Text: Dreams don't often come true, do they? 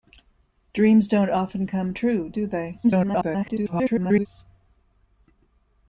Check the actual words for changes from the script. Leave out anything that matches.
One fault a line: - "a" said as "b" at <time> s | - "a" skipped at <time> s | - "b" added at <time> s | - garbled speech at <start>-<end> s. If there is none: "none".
- garbled speech at 2.8-4.3 s